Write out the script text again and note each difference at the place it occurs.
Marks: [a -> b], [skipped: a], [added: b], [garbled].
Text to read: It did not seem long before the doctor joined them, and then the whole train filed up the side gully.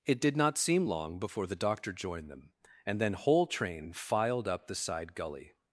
It did not seem long before the doctor joined them, and then [skipped: the] whole train filed up the side gully.